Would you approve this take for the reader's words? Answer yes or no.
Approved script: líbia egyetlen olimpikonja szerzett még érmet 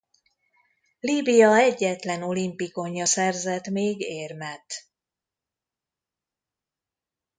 yes